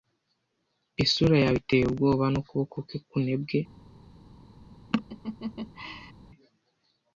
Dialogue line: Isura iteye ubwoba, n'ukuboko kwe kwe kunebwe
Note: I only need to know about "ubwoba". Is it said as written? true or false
true